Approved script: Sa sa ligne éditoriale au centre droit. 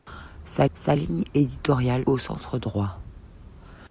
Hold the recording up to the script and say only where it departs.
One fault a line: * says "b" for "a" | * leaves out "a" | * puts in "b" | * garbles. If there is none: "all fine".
all fine